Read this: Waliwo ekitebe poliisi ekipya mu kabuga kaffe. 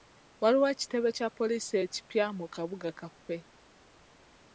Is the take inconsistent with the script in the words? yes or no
yes